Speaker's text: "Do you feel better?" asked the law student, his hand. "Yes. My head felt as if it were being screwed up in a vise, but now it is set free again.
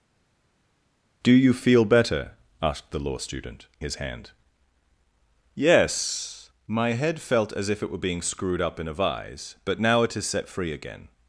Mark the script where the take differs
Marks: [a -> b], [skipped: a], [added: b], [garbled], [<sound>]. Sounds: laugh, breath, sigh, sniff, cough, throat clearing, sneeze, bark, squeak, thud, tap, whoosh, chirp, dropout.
"Do you feel better?" asked the law student, his hand. "Yes. My head felt as if it were being screwed up in a vise, but now it is set free again.